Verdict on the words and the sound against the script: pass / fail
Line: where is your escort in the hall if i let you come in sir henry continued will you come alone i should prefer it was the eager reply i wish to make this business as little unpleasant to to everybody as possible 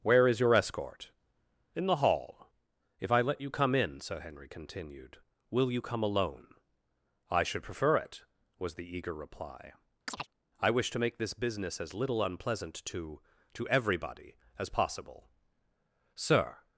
fail